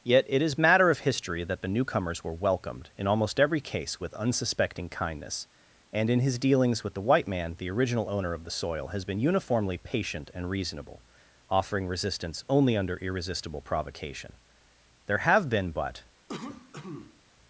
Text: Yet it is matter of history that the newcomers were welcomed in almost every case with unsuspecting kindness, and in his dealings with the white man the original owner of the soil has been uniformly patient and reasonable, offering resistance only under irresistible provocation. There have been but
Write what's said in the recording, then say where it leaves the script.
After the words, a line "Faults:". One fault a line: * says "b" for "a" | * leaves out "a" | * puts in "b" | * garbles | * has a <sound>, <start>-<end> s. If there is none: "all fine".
Yet it is matter of history that the newcomers were welcomed in almost every case with unsuspecting kindness, and in his dealings with the white man the original owner of the soil has been uniformly patient and reasonable, offering resistance only under irresistible provocation. There have been but
Faults:
* has a cough, 16.3-17.2 s